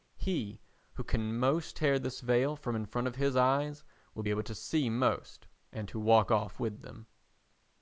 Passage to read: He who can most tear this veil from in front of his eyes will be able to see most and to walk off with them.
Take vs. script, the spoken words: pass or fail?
pass